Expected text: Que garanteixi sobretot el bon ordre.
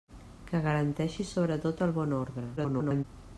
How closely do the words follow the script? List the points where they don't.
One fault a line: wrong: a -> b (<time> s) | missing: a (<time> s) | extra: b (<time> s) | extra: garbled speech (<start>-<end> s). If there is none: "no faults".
extra: garbled speech (2.6-3.0 s)